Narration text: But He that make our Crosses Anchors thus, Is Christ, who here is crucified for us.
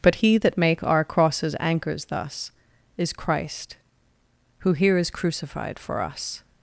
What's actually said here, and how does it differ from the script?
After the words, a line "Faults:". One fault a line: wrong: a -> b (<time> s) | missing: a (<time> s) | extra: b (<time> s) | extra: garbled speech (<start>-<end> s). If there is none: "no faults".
But He that make our Crosses Anchors thus, Is Christ, who here is crucified for us.
Faults:
no faults